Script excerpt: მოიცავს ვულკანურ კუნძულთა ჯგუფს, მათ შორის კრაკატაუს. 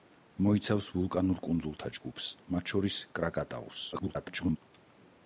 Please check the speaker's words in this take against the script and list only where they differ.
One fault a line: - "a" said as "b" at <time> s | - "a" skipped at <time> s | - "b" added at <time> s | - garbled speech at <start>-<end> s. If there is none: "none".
- garbled speech at 3.9-4.6 s